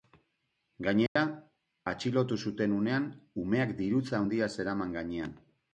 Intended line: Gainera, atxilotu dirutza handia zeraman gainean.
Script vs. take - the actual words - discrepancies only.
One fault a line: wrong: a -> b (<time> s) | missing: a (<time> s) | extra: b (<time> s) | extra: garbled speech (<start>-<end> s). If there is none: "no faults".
extra: zuten unean umeak (2.5 s)